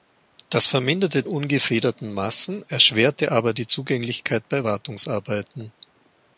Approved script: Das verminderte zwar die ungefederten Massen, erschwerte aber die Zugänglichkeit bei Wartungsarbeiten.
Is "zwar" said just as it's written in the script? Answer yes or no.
no